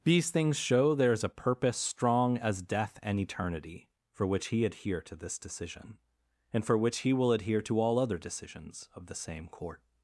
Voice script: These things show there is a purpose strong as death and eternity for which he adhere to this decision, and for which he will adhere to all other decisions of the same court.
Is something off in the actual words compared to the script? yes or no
no